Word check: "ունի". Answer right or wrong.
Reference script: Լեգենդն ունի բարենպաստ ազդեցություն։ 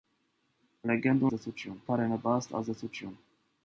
wrong